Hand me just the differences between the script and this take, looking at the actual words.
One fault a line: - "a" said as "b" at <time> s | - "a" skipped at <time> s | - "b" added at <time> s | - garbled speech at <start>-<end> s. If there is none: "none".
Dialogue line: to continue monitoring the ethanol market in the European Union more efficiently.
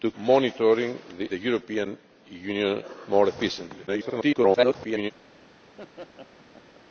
- "continue" skipped at 0.1 s
- "ethanol market in" skipped at 1.3 s
- garbled speech at 3.9-5.1 s